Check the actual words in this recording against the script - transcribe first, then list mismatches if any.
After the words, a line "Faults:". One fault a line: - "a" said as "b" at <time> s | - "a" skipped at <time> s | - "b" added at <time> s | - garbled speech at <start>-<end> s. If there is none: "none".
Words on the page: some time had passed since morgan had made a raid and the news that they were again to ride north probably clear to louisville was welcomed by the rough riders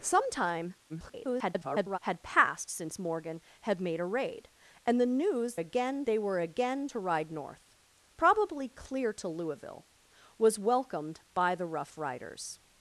some time [garbled] had passed since morgan had made a raid and the news again they were again to ride north probably clear to louisville was welcomed by the rough riders
Faults:
- garbled speech at 0.9-2.0 s
- "that" said as "again" at 5.6 s